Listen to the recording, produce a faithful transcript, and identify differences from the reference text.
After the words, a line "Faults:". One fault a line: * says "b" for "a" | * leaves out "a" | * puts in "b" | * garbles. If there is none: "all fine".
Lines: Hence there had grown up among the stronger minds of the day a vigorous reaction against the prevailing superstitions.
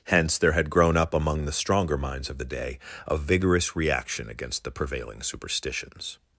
Hence there had grown up among the stronger minds of the day a vigorous reaction against the prevailing superstitions.
Faults:
all fine